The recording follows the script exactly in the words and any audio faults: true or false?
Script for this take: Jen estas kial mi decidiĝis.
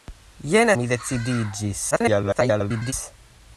false